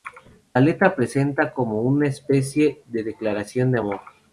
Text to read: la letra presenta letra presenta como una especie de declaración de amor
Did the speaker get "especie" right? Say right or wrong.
right